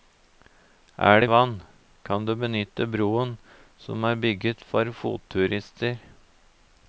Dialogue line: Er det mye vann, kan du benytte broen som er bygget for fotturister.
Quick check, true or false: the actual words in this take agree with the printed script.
false